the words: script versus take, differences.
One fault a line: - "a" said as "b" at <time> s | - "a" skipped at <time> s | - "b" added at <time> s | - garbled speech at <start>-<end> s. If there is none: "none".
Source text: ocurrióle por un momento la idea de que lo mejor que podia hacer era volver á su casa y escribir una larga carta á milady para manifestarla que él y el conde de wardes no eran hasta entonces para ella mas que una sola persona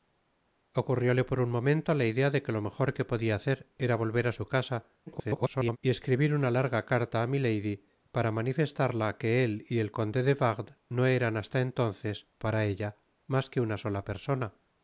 - garbled speech at 5.1-5.8 s